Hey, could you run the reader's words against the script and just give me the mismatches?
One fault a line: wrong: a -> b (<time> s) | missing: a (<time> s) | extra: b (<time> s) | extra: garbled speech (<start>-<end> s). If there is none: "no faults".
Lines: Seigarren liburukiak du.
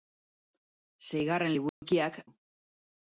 no faults